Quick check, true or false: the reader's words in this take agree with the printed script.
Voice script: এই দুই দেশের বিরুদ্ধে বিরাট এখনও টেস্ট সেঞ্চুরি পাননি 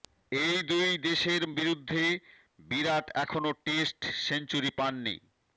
true